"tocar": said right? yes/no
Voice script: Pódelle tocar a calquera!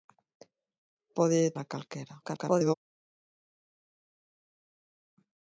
no